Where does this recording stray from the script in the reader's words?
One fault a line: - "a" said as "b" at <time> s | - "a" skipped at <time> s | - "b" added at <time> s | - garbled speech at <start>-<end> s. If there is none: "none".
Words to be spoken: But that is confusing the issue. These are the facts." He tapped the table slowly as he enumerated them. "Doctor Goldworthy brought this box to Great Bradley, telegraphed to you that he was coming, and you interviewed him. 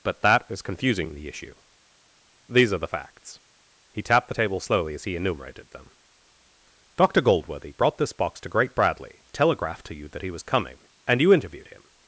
none